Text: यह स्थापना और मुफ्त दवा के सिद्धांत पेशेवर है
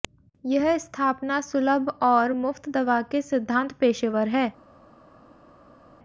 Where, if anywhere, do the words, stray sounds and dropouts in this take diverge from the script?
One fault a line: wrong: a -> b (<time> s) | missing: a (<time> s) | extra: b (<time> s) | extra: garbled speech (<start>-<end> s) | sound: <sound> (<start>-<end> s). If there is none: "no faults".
extra: सुलभ (1.4 s)